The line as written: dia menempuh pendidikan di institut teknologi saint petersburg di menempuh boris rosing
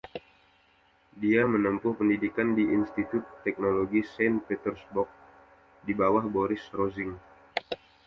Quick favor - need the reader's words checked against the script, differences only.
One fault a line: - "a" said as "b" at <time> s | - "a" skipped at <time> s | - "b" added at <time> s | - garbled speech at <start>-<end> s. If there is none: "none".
- "menempuh" said as "bawah" at 5.9 s